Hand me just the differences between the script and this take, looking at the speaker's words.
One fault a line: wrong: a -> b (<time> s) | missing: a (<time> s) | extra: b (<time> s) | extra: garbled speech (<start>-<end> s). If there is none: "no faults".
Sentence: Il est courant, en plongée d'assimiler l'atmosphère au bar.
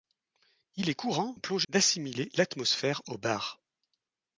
no faults